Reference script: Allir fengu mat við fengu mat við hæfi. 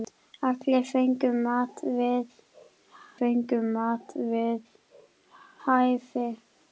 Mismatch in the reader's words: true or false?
false